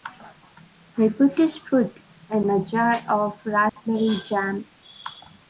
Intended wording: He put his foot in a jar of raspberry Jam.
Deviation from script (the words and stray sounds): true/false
true